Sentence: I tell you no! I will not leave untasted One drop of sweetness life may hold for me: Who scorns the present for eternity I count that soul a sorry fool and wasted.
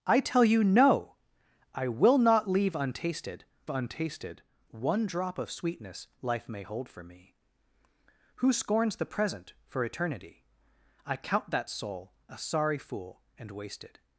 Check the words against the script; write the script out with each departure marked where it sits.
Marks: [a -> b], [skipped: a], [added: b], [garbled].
I tell you no! I will not leave untasted [added: untasted] One drop of sweetness life may hold for me: Who scorns the present for eternity I count that soul a sorry fool and wasted.